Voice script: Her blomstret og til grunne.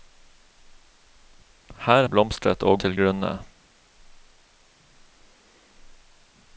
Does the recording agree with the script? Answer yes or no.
yes